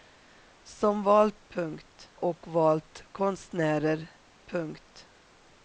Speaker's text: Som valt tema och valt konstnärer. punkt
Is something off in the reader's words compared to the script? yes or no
yes